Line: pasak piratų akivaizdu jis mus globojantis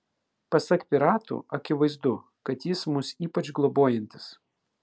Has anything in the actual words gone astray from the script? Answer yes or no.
yes